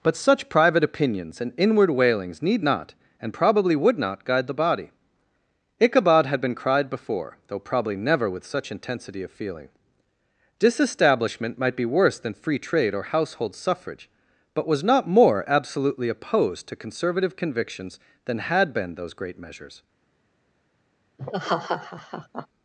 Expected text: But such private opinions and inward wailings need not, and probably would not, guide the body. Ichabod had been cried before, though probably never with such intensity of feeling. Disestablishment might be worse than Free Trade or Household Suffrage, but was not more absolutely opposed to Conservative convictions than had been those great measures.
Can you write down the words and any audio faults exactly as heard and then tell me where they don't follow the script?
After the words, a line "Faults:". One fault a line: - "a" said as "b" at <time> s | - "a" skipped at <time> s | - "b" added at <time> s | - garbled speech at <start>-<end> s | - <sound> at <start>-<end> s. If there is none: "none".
But such private opinions and inward wailings need not, and probably would not, guide the body. Ichabod had been cried before, though probably never with such intensity of feeling. Disestablishment might be worse than Free Trade or Household Suffrage, but was not more absolutely opposed to Conservative convictions than had been those great measures.
Faults:
- laugh at 21.2-22.5 s